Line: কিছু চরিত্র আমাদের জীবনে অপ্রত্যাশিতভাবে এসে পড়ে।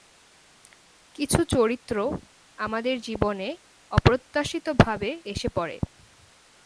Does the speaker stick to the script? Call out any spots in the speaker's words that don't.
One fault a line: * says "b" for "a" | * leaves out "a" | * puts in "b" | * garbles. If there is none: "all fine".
all fine